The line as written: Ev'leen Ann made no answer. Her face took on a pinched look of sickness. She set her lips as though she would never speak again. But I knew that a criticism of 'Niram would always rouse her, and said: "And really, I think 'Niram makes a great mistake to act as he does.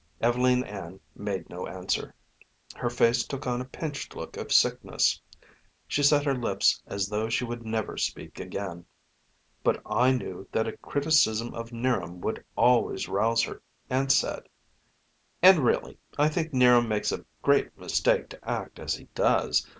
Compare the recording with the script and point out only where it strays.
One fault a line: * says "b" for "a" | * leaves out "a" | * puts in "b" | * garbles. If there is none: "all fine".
all fine